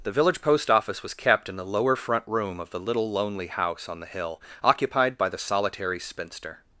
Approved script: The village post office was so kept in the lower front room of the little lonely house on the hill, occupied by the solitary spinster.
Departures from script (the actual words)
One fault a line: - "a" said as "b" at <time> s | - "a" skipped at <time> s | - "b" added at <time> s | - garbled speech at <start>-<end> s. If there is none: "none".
- "so" skipped at 1.1 s